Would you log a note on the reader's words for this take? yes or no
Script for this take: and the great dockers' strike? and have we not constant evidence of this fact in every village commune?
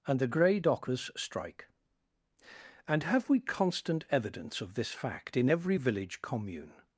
yes